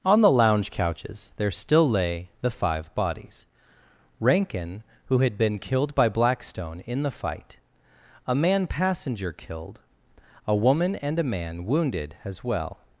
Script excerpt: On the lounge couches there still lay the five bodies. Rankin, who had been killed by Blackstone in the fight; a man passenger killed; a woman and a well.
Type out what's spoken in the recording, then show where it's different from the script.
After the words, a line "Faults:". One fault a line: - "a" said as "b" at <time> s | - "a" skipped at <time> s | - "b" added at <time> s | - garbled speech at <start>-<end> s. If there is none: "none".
On the lounge couches there still lay the five bodies. Rankin, who had been killed by Blackstone in the fight; a man passenger killed; a woman and a man wounded, as well.
Faults:
- "man wounded as" added at 11.2 s